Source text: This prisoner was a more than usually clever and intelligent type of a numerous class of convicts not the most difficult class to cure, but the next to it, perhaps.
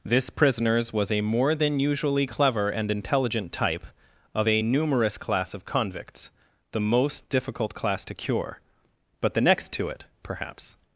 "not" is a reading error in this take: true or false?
true